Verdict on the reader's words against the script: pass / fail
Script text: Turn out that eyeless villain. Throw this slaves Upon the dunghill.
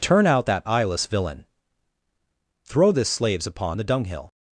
pass